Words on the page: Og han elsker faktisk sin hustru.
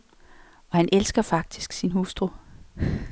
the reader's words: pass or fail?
pass